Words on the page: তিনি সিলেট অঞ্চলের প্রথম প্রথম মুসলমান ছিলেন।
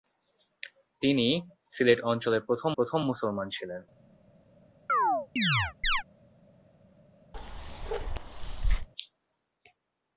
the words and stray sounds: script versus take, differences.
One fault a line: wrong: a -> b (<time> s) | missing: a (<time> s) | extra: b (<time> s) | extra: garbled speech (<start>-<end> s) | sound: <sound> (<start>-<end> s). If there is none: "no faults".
sound: chirp (4.9-6.0 s)
sound: bark (7.3-8.9 s)